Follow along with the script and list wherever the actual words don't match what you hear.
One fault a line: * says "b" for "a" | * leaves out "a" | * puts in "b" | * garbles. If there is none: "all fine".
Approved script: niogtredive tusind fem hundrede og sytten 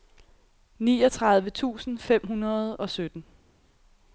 all fine